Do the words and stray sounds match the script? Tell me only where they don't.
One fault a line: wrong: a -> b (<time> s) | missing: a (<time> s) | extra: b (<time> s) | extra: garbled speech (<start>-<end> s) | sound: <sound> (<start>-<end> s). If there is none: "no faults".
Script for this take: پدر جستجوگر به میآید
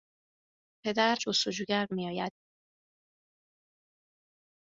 no faults